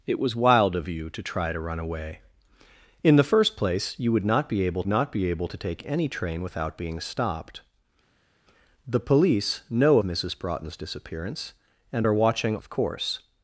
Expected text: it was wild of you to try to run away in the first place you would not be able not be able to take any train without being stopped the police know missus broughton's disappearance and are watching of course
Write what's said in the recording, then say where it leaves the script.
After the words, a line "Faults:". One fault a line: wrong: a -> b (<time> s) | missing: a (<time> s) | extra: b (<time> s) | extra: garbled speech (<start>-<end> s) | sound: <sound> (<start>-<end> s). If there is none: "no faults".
it was wild of you to try to run away in the first place you would not be able not be able to take any train without being stopped the police know missus broughton's disappearance and are watching of course
Faults:
no faults